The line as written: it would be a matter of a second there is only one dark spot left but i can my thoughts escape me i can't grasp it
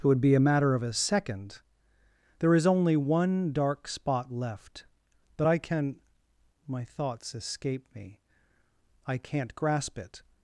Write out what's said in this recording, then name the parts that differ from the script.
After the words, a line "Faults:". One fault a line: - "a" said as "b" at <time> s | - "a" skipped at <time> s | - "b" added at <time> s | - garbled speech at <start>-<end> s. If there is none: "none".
it would be a matter of a second there is only one dark spot left but i can my thoughts escape me i can't grasp it
Faults:
none